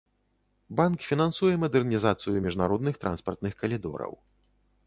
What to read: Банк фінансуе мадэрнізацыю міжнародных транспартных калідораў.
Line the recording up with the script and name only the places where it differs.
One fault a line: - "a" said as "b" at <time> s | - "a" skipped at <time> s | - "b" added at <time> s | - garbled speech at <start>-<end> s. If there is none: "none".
none